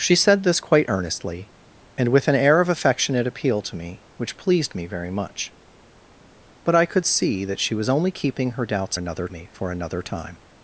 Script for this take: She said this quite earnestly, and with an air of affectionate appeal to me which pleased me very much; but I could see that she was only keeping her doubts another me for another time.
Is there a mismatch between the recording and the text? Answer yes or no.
no